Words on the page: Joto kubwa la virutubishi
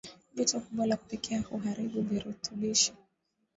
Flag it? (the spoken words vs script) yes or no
yes